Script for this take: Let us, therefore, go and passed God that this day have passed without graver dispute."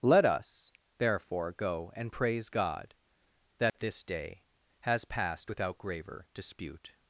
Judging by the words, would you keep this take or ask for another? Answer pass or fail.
fail